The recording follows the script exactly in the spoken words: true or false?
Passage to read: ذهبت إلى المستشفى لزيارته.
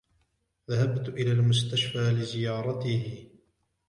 true